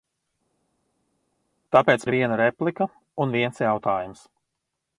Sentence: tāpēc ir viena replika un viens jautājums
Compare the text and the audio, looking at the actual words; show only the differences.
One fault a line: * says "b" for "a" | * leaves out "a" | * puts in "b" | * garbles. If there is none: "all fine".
all fine